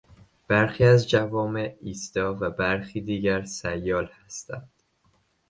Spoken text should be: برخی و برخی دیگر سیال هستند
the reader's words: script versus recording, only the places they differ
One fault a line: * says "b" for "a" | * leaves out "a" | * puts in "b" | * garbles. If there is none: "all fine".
* puts in "از جوامع ایستا"